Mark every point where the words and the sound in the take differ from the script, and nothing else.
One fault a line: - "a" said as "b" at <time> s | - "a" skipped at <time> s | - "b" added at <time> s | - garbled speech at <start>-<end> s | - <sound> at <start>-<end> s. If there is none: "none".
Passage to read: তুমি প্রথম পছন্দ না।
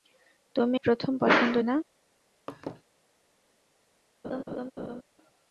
- laugh at 2.5-2.8 s
- laugh at 4.2-5.0 s